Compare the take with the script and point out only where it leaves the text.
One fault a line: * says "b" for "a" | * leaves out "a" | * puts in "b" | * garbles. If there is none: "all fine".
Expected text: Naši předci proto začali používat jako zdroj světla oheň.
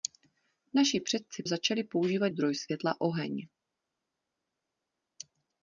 * leaves out "proto"
* leaves out "jako"